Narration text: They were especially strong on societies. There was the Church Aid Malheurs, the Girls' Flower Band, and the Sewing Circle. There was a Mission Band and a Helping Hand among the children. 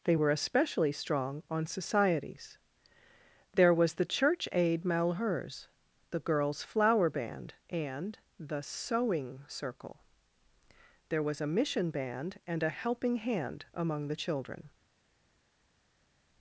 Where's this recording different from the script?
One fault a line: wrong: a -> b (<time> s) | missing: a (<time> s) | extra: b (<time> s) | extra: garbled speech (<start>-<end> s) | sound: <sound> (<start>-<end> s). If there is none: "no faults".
no faults